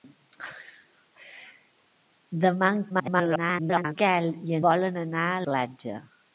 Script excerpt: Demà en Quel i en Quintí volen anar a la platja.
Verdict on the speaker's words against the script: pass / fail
fail